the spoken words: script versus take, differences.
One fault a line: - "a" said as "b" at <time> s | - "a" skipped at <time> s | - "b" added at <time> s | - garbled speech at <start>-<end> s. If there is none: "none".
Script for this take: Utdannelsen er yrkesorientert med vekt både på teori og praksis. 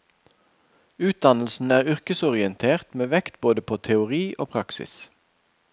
none